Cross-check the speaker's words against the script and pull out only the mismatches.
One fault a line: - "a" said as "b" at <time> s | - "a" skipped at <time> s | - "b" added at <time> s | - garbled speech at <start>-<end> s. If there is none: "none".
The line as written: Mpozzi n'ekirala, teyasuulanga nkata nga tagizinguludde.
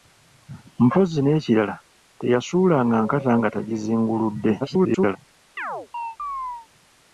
- garbled speech at 4.6-5.2 s